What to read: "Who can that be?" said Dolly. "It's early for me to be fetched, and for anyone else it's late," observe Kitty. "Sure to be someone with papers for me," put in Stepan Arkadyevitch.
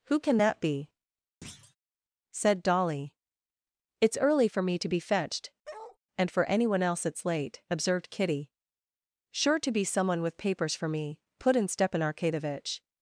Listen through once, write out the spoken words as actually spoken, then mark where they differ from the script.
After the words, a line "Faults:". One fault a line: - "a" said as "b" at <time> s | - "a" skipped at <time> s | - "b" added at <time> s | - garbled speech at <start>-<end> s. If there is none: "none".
"Who can that be?" said Dolly. "It's early for me to be fetched, and for anyone else it's late," observed Kitty. "Sure to be someone with papers for me," put in Stepan Arkadyevitch.
Faults:
- "observe" said as "observed" at 7.7 s